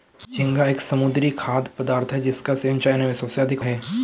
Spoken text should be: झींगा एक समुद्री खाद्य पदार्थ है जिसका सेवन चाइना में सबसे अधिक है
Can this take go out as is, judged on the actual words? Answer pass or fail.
pass